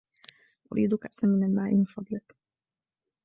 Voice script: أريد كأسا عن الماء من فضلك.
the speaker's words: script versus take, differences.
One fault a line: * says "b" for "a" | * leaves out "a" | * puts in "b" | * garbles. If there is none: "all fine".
* says "من" for "عن"